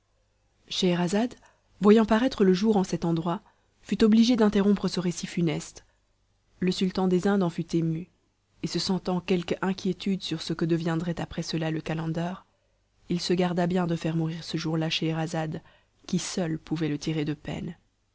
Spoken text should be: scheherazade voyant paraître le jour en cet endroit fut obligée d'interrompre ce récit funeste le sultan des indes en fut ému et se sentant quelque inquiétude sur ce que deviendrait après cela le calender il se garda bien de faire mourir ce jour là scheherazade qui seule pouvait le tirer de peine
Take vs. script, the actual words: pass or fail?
pass